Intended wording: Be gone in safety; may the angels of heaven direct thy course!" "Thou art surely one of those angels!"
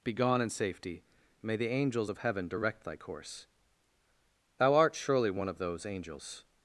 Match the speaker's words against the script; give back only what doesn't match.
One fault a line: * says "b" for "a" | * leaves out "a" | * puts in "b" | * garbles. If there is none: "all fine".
all fine